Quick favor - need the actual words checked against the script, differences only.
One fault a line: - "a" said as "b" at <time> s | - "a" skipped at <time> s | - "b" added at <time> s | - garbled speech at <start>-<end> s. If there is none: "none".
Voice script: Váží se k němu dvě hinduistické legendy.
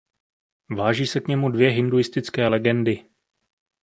none